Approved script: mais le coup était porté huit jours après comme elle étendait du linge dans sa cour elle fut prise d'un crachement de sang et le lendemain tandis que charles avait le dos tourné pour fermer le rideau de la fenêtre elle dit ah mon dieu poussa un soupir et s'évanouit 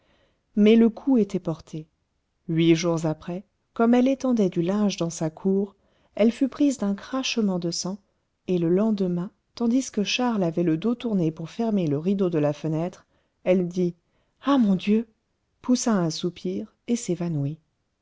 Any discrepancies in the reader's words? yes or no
no